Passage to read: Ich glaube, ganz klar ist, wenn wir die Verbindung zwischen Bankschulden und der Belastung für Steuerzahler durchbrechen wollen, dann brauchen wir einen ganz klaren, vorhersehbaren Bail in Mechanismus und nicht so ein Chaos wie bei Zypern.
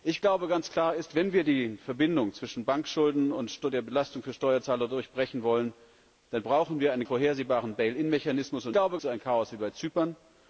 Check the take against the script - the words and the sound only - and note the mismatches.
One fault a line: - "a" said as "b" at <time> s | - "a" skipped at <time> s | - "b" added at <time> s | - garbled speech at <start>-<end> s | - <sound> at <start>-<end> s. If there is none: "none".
- "ganz klaren" skipped at 7.0 s
- "nicht" said as "glaube" at 8.7 s